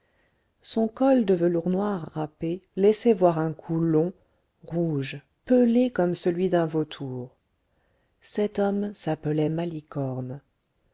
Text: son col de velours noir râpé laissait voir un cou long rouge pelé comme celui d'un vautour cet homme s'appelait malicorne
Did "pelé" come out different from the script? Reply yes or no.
no